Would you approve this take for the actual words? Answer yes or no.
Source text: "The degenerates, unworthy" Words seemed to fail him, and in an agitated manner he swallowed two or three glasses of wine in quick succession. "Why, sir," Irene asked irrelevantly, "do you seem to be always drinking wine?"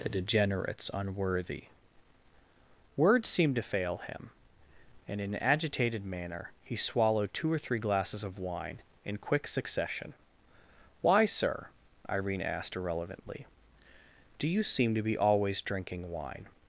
yes